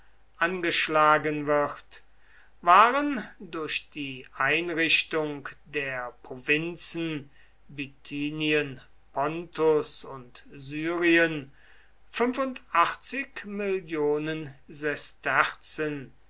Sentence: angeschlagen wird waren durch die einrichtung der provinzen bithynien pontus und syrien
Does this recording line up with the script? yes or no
yes